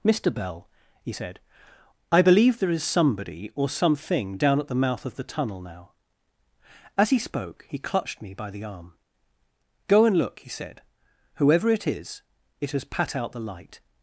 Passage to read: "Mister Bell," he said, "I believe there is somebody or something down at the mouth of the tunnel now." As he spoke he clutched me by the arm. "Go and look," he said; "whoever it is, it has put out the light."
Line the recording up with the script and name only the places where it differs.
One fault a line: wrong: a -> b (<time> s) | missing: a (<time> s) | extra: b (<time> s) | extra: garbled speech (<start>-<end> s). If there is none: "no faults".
wrong: put -> pat (12.8 s)